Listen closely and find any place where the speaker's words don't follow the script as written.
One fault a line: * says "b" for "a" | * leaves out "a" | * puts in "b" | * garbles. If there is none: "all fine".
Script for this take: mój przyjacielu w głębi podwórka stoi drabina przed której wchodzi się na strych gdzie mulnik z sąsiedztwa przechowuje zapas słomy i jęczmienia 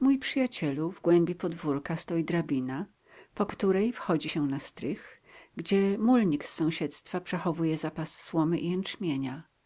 * says "po" for "przed"